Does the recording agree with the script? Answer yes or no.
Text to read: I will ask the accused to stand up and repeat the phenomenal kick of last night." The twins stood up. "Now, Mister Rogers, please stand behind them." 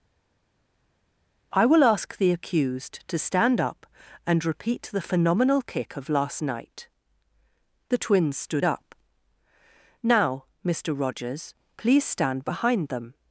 yes